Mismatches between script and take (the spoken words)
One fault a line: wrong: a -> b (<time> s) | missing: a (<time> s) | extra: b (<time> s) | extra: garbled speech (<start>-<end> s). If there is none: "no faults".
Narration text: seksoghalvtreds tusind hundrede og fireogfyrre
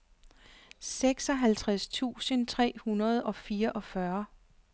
extra: tre (2.5 s)